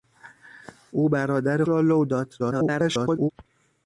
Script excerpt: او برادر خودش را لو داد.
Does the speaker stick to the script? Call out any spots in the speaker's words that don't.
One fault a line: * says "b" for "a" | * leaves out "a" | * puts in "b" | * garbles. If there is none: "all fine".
* leaves out "خودش"
* garbles